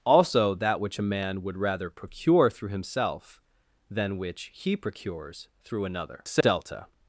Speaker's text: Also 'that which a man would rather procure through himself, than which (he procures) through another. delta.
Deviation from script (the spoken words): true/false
false